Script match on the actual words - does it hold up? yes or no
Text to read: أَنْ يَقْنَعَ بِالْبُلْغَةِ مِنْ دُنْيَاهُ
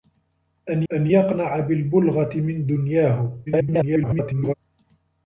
no